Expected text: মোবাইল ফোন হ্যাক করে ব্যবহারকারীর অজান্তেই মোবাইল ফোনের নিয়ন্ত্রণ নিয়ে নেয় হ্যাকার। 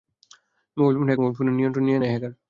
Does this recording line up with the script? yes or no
no